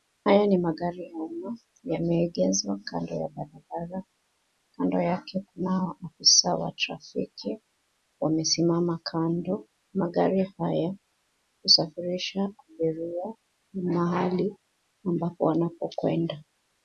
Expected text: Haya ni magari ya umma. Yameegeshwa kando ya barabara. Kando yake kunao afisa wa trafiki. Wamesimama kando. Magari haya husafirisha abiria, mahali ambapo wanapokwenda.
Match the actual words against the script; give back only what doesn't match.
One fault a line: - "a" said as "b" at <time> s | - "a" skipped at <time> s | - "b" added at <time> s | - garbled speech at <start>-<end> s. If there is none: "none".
none